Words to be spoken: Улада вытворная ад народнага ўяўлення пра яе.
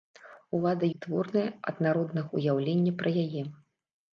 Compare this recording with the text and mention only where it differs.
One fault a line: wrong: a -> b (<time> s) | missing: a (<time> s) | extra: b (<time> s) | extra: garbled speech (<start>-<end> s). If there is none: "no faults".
no faults